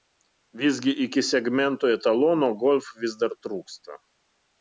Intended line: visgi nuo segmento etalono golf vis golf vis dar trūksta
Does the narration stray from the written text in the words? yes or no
yes